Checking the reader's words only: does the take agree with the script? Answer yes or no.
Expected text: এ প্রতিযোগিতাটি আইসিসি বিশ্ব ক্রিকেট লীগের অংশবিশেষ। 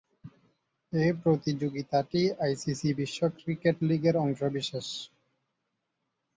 yes